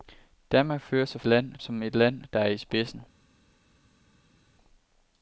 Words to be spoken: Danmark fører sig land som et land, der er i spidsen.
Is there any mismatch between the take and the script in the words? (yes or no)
no